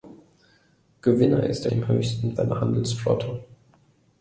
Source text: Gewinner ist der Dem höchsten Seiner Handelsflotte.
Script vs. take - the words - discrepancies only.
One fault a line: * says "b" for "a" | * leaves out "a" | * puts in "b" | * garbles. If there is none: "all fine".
all fine